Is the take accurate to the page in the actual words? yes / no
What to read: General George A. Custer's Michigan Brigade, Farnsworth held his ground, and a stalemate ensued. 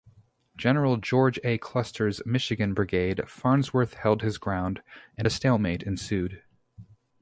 yes